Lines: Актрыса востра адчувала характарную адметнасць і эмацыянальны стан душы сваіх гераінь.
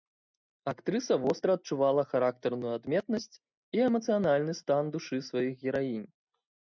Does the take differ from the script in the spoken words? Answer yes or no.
no